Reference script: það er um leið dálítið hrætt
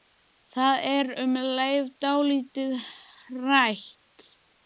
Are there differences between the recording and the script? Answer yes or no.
no